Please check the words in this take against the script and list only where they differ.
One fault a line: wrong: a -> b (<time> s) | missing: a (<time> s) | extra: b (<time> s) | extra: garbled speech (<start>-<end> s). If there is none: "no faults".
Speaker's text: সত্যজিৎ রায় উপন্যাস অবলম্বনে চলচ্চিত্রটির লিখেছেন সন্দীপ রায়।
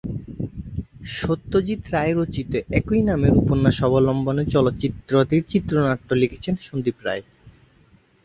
extra: রচিত একই নামের (2.1 s)
extra: চিত্রনাট্য (5.5 s)